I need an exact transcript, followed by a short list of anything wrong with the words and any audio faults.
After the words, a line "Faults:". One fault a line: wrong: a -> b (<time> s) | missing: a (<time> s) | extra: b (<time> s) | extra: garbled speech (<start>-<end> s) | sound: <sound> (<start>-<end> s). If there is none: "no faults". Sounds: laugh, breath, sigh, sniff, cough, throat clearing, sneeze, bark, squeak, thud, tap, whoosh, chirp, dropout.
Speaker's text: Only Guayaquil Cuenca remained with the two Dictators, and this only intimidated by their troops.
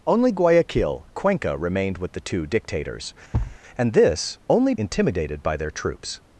Only Guayaquil Cuenca remained with the two Dictators, and this only intimidated by their troops.
Faults:
sound: thud (3.3-3.6 s)